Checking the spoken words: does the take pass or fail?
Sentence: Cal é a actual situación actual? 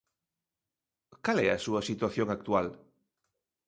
fail